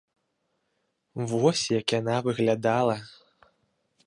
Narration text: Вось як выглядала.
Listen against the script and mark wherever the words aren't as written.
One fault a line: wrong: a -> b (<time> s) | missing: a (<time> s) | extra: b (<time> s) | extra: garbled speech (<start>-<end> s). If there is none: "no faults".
extra: яна (2.0 s)